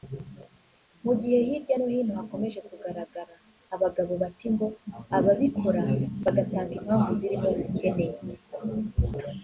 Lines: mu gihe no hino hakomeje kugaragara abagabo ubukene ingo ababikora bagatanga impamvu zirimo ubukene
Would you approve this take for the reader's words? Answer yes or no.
no